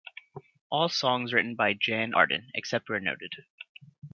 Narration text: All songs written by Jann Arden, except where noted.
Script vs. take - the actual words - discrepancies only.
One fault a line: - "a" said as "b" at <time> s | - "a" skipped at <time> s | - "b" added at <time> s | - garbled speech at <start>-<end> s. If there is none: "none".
none